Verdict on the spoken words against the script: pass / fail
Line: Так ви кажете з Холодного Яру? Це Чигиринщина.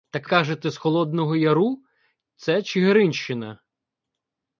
fail